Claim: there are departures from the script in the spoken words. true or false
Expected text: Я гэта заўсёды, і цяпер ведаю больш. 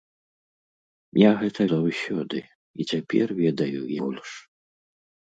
false